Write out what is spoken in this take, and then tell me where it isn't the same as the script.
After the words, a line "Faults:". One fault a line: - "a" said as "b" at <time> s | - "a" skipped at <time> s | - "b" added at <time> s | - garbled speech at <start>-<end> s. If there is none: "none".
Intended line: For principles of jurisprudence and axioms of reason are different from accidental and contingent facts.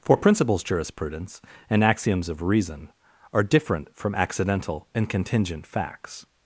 For principles jurisprudence and axioms of reason are different from accidental and contingent facts.
Faults:
- "of" skipped at 0.6 s